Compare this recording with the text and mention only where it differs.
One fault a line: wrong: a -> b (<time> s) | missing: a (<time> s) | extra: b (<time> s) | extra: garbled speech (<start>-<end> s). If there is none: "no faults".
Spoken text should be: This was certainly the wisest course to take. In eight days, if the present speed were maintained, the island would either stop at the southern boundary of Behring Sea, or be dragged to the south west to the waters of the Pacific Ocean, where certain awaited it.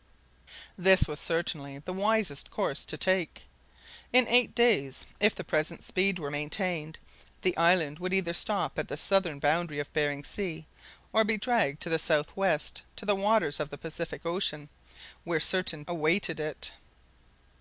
no faults